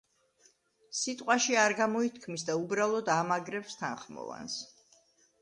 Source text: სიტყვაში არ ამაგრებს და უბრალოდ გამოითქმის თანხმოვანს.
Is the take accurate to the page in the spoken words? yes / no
no